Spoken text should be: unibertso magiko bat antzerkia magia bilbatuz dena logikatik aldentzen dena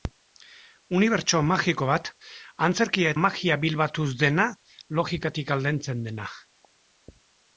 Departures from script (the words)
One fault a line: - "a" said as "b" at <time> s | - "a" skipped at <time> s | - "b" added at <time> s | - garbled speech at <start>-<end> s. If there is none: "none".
none